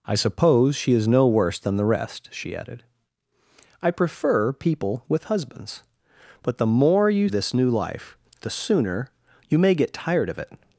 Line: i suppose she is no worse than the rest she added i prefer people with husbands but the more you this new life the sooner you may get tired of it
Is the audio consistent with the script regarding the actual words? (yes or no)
yes